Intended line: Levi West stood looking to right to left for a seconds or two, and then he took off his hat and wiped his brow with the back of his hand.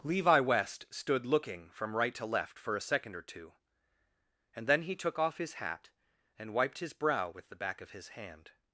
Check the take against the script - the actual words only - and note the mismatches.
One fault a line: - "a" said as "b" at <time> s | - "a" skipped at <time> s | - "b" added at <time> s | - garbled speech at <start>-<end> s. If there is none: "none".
- "to" said as "from" at 1.7 s
- "seconds" said as "second" at 2.8 s